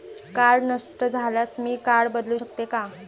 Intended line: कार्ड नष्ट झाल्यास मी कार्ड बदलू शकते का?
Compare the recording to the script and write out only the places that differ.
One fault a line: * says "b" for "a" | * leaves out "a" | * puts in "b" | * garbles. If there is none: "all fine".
all fine